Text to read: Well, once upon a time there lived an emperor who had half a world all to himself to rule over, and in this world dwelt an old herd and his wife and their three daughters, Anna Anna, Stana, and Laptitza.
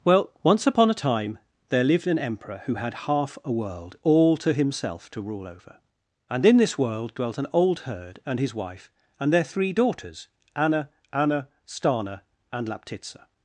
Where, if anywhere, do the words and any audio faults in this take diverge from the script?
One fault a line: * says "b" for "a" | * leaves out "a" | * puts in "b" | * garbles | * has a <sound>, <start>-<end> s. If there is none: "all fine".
all fine